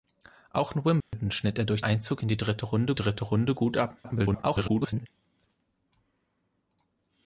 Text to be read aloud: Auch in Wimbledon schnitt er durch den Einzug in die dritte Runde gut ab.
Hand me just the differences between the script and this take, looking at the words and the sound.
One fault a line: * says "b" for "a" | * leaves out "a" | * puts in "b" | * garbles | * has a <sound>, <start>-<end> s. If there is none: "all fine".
* has a dropout, 1.0-1.1 s
* leaves out "den"
* puts in "dritte Runde"
* garbles